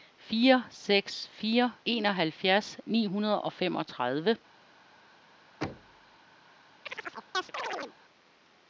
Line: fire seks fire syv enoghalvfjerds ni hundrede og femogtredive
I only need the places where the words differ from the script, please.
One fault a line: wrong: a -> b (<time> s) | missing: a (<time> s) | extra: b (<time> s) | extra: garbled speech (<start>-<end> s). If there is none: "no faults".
missing: syv (1.7 s)